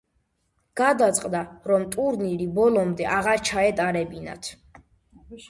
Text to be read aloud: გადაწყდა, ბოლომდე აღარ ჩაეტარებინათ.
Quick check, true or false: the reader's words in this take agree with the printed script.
false